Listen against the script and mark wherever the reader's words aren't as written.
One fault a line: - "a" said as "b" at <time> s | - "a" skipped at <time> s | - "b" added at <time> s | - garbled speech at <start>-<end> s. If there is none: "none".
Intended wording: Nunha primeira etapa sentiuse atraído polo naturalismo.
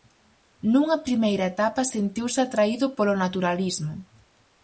none